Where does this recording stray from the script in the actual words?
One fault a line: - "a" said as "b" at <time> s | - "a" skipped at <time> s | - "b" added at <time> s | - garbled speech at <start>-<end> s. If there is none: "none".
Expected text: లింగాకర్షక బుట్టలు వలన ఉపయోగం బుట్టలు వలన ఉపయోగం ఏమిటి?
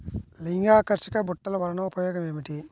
- "బుట్టలు వలన ఉపయోగం" skipped at 2.2 s